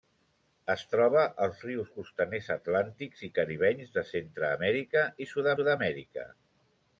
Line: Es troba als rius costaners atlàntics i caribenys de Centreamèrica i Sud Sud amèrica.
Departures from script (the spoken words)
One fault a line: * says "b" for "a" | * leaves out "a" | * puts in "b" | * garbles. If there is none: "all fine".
all fine